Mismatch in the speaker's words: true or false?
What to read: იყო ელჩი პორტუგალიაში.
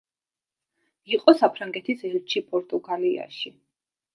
true